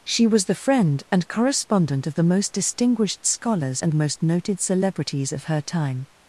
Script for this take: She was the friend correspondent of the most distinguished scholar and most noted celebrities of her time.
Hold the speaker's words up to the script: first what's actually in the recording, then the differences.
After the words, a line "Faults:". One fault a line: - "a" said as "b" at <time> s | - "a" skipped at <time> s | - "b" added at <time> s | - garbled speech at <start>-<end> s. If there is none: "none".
She was the friend and correspondent of the most distinguished scholars and most noted celebrities of her time.
Faults:
- "and" added at 1.1 s
- "scholar" said as "scholars" at 3.3 s